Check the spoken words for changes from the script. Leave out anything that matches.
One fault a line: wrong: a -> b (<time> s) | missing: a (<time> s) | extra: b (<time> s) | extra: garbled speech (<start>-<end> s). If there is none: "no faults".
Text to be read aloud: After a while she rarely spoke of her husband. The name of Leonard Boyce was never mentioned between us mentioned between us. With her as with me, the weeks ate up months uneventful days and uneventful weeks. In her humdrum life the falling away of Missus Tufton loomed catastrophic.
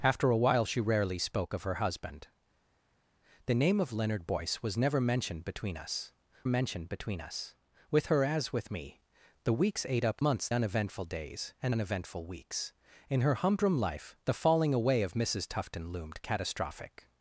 no faults